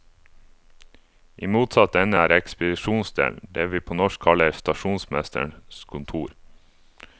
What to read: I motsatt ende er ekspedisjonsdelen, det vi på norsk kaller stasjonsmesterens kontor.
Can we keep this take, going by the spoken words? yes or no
yes